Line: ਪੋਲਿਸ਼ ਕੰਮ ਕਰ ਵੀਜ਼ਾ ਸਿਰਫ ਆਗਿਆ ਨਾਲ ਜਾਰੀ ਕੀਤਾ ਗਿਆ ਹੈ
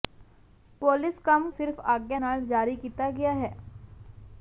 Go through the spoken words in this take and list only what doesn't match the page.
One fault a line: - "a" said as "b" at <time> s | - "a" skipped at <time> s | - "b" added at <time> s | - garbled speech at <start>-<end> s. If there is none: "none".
- "ਕਰ ਵੀਜ਼ਾ" skipped at 1.5 s